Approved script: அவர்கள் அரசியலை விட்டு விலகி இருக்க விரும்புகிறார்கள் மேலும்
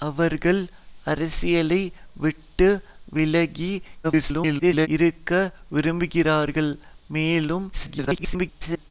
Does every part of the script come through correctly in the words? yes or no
no